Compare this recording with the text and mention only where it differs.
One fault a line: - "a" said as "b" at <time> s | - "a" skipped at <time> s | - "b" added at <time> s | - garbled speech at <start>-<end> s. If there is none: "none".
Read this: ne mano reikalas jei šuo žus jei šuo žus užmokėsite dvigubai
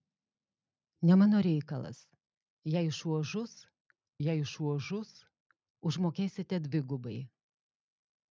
none